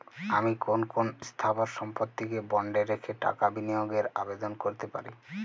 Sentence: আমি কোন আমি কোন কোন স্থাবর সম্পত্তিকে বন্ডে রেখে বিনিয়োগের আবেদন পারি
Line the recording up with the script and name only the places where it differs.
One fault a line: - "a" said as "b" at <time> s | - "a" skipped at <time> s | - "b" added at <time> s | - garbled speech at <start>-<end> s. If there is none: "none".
- "আমি" skipped at 0.8 s
- "কোন" skipped at 1.1 s
- "টাকা" added at 3.2 s
- "করতে" added at 4.6 s